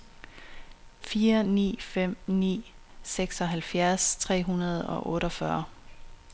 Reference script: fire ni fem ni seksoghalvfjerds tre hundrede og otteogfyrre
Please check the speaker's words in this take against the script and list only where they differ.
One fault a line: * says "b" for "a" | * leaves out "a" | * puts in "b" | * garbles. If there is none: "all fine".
all fine